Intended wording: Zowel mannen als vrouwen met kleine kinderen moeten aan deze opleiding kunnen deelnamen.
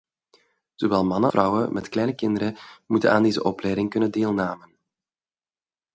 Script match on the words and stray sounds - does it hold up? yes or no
no